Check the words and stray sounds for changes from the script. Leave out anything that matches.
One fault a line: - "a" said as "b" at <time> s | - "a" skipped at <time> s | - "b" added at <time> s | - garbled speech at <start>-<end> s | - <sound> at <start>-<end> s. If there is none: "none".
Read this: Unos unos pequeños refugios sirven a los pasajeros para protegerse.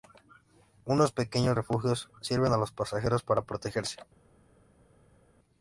- "unos" skipped at 1.1 s